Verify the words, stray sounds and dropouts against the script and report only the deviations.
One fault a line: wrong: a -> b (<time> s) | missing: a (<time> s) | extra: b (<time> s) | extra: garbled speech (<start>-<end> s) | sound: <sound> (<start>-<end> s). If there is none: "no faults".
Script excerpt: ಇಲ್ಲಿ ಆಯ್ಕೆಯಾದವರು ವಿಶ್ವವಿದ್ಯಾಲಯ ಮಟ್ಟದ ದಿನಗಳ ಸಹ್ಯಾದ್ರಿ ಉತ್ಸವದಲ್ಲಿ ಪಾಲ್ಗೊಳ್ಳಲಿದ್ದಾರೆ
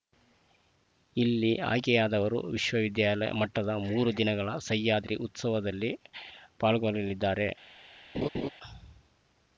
extra: ಮೂರು (3.9 s)
sound: laugh (8.1-8.5 s)